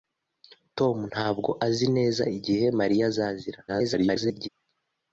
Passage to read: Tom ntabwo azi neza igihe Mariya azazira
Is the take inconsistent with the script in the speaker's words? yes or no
yes